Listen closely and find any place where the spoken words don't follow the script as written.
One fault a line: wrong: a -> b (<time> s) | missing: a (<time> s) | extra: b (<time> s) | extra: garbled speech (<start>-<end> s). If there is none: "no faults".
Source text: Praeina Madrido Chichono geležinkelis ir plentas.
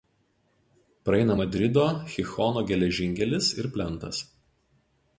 no faults